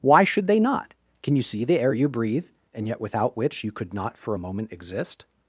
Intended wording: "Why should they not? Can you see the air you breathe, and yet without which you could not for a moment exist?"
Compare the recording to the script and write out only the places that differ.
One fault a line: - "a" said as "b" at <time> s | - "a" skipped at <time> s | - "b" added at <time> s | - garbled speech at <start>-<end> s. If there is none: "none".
none